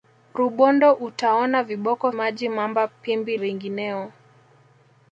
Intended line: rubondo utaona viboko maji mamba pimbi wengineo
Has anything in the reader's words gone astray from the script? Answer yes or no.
no